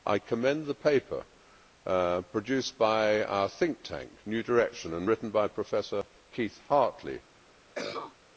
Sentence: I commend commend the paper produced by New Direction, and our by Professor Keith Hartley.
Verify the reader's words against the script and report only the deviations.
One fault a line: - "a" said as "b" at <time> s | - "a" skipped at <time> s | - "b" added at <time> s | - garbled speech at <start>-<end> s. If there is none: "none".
- "commend" skipped at 0.7 s
- "our think tank" added at 3.2 s
- "our" said as "written" at 5.1 s